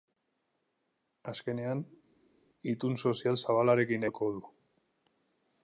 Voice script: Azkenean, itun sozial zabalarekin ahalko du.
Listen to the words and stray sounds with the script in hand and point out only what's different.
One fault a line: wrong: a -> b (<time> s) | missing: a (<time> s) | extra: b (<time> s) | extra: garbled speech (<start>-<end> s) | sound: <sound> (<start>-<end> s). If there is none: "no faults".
no faults